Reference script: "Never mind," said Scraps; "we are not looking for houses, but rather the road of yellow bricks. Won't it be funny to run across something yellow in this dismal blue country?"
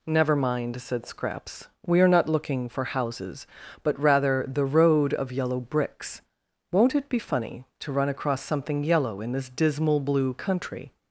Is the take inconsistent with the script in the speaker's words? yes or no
no